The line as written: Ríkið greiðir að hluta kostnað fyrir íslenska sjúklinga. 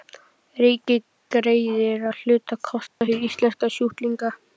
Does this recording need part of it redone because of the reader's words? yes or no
no